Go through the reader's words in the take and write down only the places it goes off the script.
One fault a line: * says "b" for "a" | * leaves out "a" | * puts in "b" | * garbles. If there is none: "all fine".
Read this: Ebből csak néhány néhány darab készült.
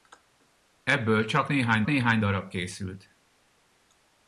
all fine